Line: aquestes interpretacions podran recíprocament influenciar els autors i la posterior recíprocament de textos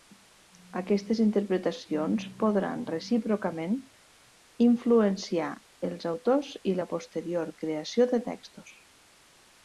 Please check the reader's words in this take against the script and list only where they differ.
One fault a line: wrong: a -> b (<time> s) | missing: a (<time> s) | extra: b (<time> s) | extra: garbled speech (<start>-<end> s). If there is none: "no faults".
wrong: recíprocament -> creació (7.6 s)